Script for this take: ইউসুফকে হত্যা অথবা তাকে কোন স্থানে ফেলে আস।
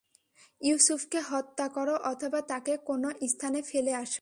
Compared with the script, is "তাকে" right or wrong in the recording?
right